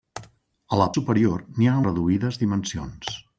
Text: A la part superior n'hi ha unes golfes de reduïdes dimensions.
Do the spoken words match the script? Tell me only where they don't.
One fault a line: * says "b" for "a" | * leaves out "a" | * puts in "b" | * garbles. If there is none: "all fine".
* leaves out "part"
* leaves out "unes golfes de"